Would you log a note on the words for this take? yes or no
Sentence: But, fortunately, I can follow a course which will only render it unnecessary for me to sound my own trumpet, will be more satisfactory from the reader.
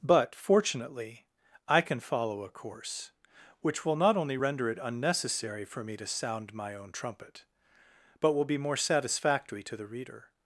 yes